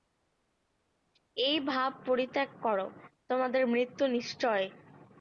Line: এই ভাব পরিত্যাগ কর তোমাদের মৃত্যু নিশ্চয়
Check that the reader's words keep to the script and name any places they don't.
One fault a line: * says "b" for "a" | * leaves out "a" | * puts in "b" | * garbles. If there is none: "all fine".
all fine